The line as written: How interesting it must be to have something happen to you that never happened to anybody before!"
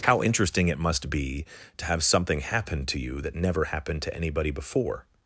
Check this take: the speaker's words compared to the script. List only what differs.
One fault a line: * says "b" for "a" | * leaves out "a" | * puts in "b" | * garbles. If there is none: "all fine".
all fine